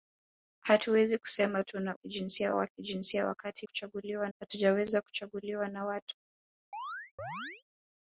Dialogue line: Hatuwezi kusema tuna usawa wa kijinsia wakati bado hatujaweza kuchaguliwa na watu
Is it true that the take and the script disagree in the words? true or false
true